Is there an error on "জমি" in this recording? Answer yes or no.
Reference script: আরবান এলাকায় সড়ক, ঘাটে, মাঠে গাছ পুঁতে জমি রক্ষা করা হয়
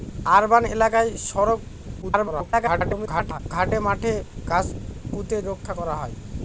yes